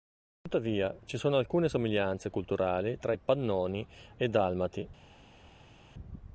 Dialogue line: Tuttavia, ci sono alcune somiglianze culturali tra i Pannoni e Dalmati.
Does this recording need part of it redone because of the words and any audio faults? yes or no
no